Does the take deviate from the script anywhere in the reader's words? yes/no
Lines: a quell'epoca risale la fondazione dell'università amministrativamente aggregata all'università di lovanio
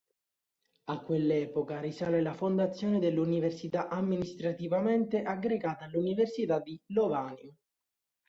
no